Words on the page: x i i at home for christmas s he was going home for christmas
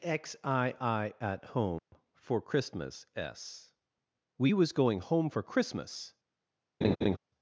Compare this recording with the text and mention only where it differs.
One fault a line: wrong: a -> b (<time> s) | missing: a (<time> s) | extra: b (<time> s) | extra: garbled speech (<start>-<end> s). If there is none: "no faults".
wrong: he -> we (4.4 s)